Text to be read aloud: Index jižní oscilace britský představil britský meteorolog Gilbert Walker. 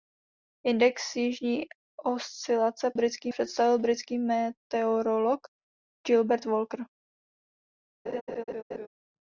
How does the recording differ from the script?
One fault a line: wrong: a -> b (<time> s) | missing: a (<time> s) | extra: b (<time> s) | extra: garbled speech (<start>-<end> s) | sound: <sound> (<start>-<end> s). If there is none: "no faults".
sound: laugh (8.1-8.9 s)